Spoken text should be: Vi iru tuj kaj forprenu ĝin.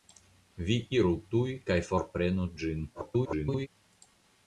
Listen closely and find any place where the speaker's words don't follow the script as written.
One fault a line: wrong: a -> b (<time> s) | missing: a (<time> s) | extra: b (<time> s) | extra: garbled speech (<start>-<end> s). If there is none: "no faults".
extra: garbled speech (2.9-3.7 s)